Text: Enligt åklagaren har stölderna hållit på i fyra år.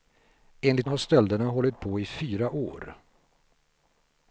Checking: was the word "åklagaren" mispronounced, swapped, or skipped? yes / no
yes